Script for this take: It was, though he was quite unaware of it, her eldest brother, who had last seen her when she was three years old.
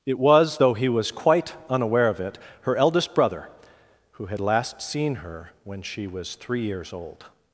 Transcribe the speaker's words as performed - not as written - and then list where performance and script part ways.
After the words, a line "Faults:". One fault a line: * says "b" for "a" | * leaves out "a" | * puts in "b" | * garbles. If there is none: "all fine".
It was, though he was quite unaware of it, her eldest brother, who had last seen her when she was three years old.
Faults:
all fine